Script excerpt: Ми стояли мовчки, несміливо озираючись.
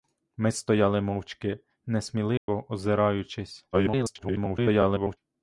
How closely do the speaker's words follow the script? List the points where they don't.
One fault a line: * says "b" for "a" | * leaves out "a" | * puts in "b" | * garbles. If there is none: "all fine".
* garbles